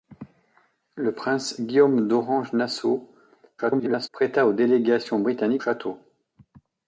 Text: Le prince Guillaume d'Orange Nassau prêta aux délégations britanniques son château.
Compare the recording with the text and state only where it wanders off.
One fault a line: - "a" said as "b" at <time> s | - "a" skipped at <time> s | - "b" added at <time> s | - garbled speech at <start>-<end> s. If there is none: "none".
- garbled speech at 3.6-4.1 s
- "son" skipped at 5.6 s